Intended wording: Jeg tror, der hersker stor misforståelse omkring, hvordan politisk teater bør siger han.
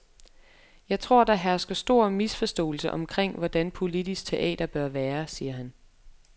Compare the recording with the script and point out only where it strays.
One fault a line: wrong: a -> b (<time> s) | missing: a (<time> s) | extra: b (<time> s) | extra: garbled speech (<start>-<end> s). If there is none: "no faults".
extra: være (4.9 s)